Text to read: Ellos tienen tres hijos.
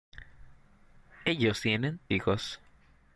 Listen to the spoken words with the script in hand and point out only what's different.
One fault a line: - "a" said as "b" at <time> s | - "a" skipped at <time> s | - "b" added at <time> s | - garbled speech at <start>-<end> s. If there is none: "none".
- "tres" skipped at 2.0 s